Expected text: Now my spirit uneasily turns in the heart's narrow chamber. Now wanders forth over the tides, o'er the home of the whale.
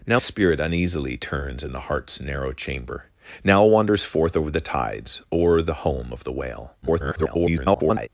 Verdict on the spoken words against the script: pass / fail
fail